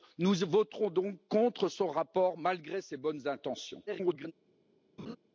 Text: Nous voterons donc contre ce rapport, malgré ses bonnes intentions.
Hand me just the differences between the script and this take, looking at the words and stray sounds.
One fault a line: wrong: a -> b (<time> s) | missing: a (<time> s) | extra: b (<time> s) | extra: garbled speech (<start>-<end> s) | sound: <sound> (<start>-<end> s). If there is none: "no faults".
extra: garbled speech (3.9-4.3 s)
sound: laugh (5.0-5.2 s)